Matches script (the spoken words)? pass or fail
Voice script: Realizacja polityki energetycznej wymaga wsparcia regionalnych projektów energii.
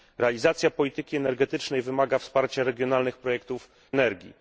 pass